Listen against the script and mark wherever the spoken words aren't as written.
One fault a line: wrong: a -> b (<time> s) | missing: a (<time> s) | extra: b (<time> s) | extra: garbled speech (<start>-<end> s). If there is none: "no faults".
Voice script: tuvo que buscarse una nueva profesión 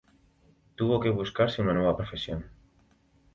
no faults